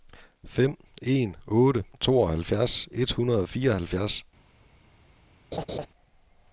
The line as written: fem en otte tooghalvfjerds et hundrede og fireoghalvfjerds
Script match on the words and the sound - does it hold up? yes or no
no